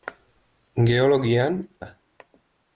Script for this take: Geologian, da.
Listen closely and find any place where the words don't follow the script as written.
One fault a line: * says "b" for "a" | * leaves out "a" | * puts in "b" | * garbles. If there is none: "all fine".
all fine